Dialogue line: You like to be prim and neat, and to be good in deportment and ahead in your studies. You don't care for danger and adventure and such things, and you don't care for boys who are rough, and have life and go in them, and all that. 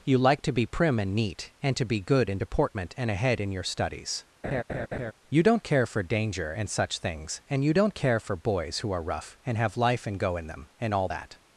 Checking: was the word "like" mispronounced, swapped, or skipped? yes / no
no